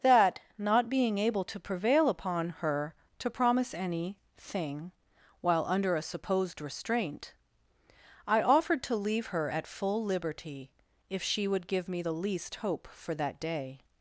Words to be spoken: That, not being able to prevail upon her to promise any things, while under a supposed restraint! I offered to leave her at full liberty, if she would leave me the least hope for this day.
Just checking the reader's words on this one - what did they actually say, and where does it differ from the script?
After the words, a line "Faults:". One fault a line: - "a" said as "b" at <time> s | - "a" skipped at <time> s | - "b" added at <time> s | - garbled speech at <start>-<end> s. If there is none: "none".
That, not being able to prevail upon her to promise any thing, while under a supposed restraint! I offered to leave her at full liberty, if she would give me the least hope for that day.
Faults:
- "things" said as "thing" at 4.3 s
- "leave" said as "give" at 11.7 s
- "this" said as "that" at 13.1 s